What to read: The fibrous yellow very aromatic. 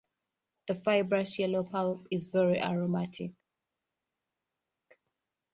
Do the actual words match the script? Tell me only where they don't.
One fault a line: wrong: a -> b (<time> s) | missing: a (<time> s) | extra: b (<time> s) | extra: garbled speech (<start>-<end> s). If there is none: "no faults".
extra: pulp is (1.6 s)